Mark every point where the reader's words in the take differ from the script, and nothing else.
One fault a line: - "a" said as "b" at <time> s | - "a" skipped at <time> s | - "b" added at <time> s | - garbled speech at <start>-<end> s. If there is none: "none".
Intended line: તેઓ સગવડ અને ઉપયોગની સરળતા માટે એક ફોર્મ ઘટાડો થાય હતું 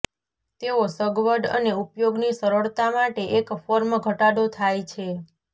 - "હતું" said as "છે" at 4.9 s